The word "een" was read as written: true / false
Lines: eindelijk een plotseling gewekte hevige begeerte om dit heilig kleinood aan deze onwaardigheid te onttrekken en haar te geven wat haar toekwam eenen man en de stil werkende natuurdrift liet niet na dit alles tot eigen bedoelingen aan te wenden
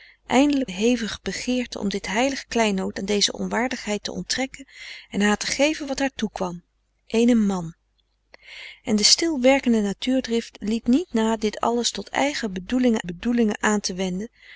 false